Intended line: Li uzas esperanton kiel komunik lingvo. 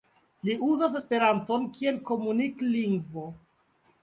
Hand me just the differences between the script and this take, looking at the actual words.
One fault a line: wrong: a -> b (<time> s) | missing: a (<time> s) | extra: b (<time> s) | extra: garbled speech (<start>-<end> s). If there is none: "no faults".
no faults